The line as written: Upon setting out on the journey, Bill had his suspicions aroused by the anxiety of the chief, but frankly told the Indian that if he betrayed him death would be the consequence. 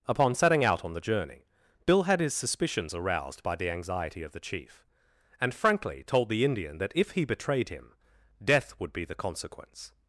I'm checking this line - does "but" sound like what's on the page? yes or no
no